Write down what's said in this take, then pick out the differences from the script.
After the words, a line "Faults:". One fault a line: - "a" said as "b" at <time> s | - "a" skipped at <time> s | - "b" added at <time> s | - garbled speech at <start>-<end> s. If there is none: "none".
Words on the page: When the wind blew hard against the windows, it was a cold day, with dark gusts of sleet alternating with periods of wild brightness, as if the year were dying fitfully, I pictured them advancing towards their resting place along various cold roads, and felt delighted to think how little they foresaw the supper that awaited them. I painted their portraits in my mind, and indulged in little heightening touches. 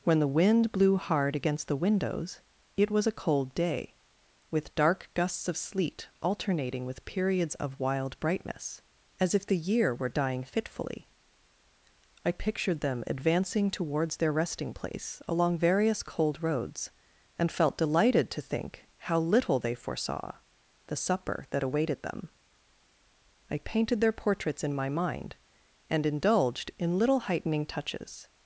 When the wind blew hard against the windows, it was a cold day, with dark gusts of sleet alternating with periods of wild brightness, as if the year were dying fitfully, I pictured them advancing towards their resting place along various cold roads, and felt delighted to think how little they foresaw the supper that awaited them. I painted their portraits in my mind, and indulged in little heightening touches.
Faults:
none